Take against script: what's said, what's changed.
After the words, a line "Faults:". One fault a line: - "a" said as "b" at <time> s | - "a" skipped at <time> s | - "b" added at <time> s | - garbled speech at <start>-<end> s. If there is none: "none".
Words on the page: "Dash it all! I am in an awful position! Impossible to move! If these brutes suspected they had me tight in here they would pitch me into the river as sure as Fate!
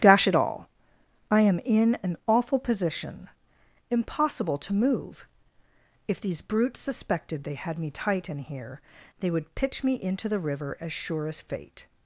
"Dash it all! I am in an awful position! Impossible to move! If these brutes suspected they had me tight in here they would pitch me into the river as sure as Fate!
Faults:
none